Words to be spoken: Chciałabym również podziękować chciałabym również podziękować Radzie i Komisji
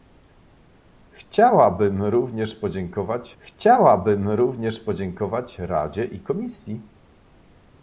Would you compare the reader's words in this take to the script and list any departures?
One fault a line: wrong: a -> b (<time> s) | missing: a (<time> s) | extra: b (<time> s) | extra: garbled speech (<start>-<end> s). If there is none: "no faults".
no faults